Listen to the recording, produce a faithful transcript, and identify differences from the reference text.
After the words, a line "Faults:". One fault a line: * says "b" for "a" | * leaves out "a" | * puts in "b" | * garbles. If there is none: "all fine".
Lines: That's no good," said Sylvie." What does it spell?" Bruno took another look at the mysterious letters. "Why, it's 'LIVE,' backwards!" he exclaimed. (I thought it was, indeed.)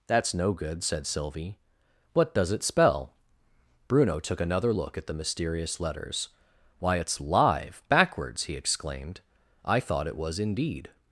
That's no good," said Sylvie." What does it spell?" Bruno took another look at the mysterious letters. "Why, it's 'LIVE,' backwards!" he exclaimed. (I thought it was, indeed.)
Faults:
all fine